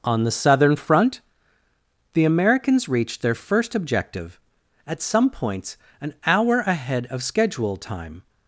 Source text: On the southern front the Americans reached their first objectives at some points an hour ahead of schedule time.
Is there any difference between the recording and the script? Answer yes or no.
yes